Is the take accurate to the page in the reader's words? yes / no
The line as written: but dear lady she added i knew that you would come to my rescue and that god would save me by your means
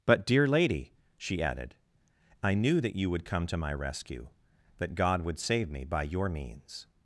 no